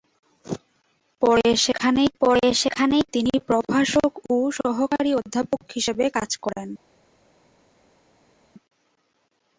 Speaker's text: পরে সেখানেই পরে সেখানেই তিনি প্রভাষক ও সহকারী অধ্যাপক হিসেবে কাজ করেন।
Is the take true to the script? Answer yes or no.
yes